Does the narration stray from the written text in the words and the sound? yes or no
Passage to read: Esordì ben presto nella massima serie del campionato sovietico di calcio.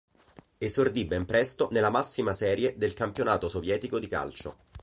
no